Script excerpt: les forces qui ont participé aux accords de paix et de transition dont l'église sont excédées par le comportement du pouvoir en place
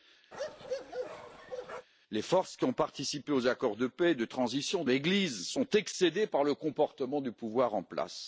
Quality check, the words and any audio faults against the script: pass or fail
fail